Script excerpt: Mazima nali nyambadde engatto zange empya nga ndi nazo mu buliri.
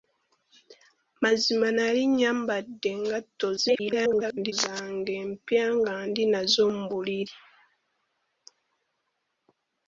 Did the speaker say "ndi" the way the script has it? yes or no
yes